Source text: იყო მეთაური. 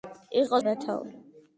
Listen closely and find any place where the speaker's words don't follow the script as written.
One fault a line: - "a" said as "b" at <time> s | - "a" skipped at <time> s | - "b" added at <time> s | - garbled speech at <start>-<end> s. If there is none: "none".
none